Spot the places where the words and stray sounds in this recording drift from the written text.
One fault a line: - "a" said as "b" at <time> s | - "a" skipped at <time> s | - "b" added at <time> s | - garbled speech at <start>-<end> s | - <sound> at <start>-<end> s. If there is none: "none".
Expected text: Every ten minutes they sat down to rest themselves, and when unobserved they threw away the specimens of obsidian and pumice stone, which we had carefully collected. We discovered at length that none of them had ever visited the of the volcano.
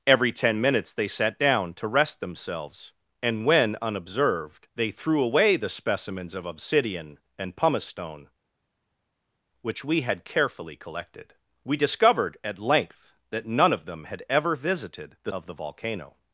none